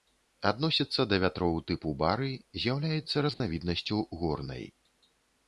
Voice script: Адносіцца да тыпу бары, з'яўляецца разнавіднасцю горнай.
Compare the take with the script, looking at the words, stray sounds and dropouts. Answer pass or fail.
fail